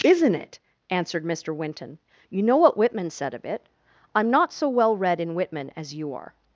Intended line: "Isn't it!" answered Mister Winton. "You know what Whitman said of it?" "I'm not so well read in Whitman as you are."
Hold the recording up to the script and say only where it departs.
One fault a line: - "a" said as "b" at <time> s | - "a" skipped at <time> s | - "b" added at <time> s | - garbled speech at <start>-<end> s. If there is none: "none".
none